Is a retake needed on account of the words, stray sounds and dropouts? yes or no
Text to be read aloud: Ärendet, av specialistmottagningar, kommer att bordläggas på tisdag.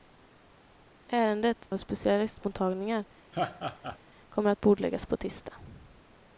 yes